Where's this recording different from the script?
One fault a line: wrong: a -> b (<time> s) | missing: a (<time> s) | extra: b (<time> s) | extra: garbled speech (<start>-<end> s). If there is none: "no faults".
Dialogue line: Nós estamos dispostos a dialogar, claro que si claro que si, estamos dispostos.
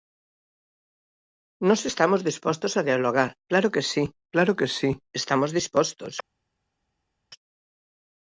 no faults